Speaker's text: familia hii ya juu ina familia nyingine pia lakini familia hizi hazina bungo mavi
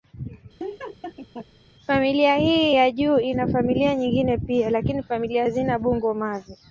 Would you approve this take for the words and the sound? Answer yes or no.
no